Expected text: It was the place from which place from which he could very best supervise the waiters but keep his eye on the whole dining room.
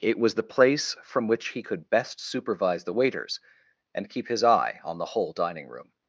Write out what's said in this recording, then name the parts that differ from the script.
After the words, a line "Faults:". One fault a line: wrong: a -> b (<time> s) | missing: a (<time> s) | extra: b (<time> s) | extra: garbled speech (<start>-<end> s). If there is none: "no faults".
It was the place from which he could best supervise the waiters and keep his eye on the whole dining room.
Faults:
missing: place from which (1.5 s)
missing: very (1.9 s)
wrong: but -> and (3.9 s)